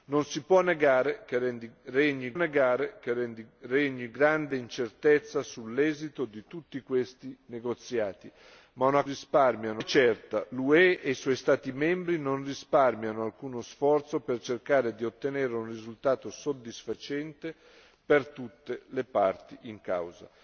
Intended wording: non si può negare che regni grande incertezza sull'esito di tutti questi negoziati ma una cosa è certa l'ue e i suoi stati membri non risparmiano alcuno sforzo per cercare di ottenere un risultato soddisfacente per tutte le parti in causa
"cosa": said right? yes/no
no